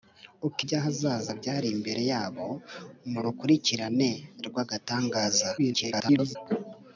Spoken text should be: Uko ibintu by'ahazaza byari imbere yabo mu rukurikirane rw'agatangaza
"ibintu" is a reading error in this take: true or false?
true